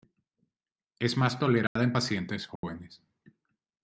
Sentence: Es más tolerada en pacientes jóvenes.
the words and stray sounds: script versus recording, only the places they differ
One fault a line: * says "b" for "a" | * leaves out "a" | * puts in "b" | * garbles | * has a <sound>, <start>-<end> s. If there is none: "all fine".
* has a dropout, 1.7-1.8 s
* has a dropout, 2.6-2.6 s